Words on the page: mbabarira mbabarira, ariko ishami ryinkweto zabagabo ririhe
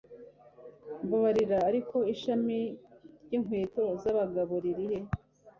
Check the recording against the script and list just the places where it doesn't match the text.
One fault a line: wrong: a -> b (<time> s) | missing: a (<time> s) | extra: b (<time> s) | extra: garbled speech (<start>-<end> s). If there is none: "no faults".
missing: mbabarira (1.6 s)